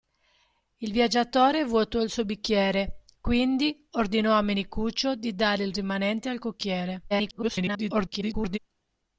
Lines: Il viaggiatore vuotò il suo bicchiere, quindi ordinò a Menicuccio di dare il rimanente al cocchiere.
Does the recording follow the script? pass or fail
fail